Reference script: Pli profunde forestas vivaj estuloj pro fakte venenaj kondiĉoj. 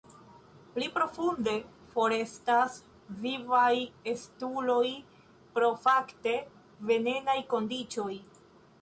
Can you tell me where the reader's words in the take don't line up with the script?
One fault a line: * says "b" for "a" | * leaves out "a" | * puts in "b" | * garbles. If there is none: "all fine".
all fine